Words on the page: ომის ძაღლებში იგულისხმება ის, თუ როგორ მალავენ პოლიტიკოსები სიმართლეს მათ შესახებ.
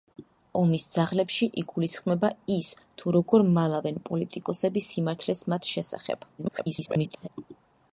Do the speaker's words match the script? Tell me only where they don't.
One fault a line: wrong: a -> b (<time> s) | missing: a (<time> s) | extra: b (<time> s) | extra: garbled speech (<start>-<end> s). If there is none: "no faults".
extra: garbled speech (6.4-7.3 s)